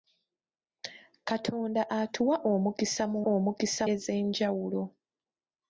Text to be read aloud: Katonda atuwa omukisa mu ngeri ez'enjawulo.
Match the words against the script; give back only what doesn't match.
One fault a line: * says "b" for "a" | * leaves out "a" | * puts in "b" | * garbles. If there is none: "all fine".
* says "omukisa" for "ngeri"